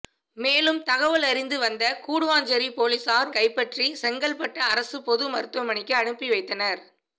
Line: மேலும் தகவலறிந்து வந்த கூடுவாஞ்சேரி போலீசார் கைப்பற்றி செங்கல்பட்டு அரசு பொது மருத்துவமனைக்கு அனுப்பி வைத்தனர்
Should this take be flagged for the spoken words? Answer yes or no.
no